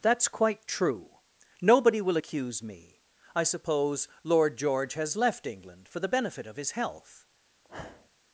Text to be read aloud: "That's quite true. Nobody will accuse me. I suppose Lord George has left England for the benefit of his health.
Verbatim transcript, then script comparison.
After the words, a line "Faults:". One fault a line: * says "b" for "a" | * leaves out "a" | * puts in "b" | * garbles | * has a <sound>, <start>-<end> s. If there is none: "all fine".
"That's quite true. Nobody will accuse me. I suppose Lord George has left England for the benefit of his health.
Faults:
* has a sniff, 7.6-8.1 s